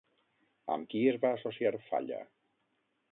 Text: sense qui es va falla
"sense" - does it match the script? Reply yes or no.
no